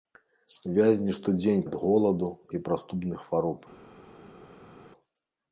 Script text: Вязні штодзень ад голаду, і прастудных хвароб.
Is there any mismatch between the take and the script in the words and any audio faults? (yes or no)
no